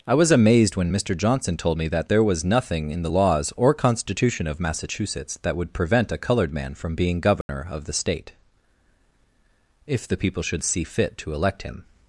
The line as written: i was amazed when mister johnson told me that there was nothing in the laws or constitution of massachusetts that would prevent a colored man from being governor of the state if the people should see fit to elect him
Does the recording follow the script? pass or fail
pass